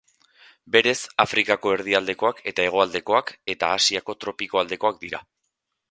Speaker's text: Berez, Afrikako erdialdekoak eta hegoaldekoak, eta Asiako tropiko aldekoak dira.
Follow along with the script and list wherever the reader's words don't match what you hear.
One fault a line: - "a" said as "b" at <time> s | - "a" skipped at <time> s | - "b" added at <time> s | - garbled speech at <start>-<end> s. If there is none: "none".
none